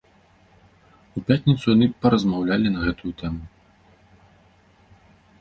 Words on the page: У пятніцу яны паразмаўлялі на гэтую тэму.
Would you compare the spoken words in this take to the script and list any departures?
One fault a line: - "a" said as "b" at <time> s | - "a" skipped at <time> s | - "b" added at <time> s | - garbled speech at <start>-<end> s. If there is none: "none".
none